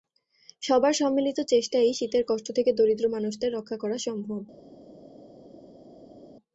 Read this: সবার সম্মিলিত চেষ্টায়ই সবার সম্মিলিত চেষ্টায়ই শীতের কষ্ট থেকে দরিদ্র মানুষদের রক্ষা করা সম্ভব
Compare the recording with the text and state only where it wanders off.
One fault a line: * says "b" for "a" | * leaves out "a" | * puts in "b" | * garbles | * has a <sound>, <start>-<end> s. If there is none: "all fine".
* leaves out "সবার সম্মিলিত চেষ্টায়ই"